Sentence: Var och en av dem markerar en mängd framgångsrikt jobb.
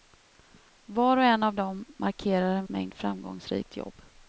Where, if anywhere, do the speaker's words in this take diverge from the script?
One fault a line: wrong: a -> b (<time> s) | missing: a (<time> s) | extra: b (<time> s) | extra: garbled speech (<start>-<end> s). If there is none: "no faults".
no faults